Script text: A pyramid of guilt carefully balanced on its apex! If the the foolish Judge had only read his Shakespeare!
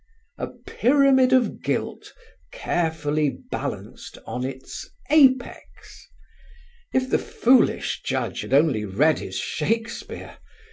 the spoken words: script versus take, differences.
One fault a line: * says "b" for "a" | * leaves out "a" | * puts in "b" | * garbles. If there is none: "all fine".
* leaves out "the"